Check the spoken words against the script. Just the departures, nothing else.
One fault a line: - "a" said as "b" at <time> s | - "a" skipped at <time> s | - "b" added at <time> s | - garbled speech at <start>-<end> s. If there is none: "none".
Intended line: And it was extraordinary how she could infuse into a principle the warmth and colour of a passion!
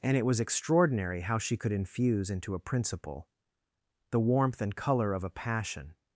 none